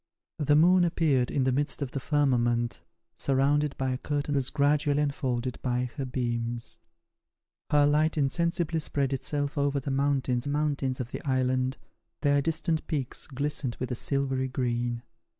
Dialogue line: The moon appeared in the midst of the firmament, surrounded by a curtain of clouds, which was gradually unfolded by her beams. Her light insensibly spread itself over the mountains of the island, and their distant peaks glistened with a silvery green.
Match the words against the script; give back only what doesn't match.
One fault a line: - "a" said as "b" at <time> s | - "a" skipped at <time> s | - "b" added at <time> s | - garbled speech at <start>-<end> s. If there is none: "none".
- "of clouds which" skipped at 4.3 s
- "mountains" added at 10.5 s
- "and" skipped at 11.8 s